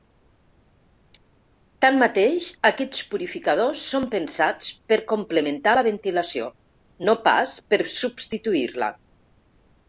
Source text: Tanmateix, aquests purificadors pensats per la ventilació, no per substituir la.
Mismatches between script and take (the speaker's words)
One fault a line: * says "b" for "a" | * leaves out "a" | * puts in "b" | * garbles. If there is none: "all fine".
* puts in "són"
* puts in "complementar"
* puts in "pas"